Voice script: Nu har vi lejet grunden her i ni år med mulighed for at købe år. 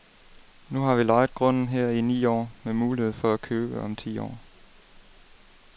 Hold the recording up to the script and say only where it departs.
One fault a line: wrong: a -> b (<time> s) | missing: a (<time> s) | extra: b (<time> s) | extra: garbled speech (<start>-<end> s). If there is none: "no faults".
extra: om ti (3.8 s)